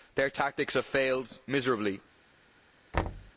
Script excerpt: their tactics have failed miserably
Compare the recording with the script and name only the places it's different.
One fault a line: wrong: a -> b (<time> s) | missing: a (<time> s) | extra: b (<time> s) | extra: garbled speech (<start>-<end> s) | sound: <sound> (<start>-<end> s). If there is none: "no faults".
sound: thud (2.9-3.3 s)